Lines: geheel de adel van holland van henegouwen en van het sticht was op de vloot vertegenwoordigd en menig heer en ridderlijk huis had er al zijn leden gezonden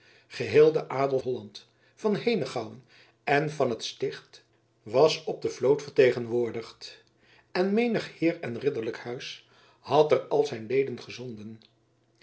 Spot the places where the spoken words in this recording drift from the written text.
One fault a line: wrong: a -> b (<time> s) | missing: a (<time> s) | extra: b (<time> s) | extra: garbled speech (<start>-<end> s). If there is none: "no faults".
missing: van (1.2 s)